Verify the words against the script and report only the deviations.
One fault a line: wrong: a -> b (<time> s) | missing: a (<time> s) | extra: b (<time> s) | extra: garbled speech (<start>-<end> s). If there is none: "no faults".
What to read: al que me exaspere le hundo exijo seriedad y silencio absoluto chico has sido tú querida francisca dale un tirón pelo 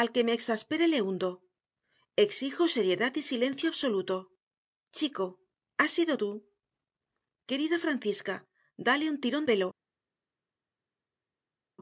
no faults